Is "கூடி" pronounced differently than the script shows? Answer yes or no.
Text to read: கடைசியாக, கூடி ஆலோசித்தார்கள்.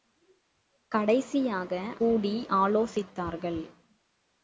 no